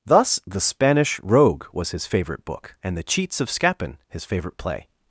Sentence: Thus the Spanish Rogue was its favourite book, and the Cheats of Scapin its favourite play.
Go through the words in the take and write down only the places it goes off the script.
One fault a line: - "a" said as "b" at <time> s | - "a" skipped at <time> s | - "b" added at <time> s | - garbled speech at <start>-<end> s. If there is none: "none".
- "its" said as "his" at 1.9 s
- "its" said as "his" at 4.1 s